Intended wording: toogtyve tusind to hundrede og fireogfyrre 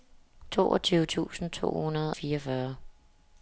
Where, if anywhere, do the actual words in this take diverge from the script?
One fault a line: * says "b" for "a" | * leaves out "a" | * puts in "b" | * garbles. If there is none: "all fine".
* leaves out "og"